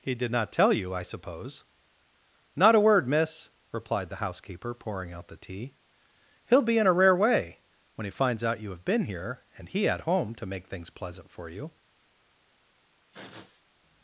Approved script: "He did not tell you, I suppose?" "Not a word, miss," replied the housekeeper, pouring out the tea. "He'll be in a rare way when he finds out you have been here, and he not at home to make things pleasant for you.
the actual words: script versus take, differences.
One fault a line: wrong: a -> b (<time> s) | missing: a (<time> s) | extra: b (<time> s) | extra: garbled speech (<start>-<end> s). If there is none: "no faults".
missing: not (9.9 s)